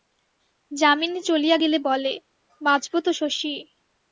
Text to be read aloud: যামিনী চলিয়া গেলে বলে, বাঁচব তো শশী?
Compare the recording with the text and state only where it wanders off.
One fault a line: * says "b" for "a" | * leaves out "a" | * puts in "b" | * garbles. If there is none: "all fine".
all fine